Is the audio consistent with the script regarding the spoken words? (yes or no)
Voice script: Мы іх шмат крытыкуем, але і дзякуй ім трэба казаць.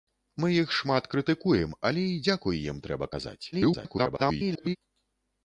no